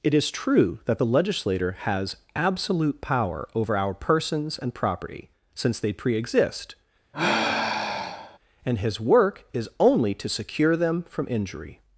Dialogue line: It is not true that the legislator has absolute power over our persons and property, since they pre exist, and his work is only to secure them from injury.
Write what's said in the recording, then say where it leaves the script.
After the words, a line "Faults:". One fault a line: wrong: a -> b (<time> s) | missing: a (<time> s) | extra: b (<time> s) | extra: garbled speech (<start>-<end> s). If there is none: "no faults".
It is true that the legislator has absolute power over our persons and property, since they pre exist, and his work is only to secure them from injury.
Faults:
missing: not (0.3 s)